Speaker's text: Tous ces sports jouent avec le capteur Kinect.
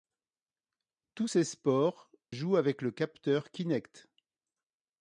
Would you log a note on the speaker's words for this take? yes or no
no